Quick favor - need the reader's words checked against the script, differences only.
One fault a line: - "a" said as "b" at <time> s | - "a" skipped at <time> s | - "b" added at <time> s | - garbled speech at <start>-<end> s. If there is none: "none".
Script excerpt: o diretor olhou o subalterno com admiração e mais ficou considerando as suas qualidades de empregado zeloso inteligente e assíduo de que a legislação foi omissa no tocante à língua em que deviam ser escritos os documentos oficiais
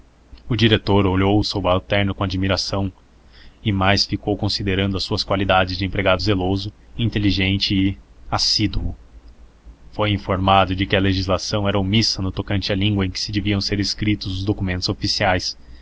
- "foi informado" added at 9.9 s
- "foi" said as "era" at 11.7 s